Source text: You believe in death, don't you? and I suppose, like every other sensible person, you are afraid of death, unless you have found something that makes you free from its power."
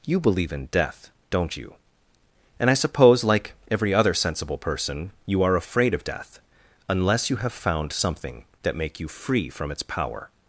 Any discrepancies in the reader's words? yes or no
yes